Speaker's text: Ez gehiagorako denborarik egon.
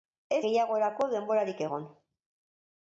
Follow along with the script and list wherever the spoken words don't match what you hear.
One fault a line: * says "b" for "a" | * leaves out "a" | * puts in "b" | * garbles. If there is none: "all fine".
all fine